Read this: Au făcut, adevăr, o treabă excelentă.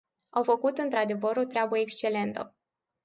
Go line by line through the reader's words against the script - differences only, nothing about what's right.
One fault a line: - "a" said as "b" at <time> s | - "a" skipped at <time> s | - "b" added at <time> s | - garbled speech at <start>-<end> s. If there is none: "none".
- "într" added at 0.8 s